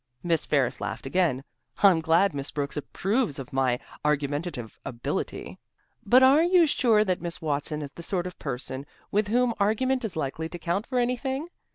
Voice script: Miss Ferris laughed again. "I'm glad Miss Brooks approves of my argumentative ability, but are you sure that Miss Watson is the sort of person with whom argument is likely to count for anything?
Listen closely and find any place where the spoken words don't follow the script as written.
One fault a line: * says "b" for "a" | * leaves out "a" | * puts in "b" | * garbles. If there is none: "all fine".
all fine